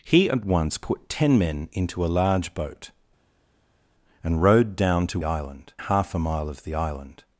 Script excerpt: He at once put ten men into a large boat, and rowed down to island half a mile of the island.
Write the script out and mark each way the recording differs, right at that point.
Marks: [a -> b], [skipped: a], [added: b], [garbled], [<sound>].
He at once put ten men into a large boat, and rowed down to island half a mile of the island.